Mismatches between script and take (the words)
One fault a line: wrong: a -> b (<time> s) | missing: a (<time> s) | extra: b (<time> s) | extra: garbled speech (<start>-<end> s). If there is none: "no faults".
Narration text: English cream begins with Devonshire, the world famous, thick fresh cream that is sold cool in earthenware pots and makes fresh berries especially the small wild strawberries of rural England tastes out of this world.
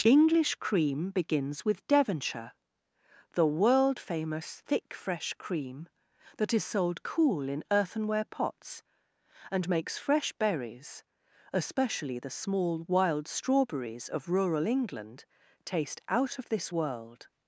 wrong: tastes -> taste (15.7 s)